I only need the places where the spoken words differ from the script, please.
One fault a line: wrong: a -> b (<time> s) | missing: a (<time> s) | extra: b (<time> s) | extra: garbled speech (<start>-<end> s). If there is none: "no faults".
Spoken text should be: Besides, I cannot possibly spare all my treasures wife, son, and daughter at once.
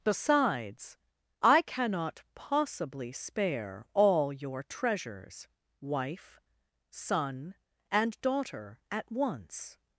wrong: my -> your (4.3 s)